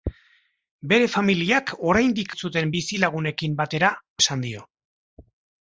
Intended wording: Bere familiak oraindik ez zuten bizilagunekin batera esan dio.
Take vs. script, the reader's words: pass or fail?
pass